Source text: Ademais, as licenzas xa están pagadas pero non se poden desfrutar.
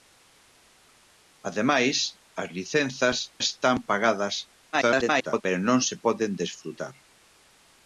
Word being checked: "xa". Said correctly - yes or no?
no